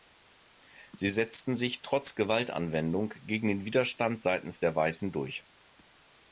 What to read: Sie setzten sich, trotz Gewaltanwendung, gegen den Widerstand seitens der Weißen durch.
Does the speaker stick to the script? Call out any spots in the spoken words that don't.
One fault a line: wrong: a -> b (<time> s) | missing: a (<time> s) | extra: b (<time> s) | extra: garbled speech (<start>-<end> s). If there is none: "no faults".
no faults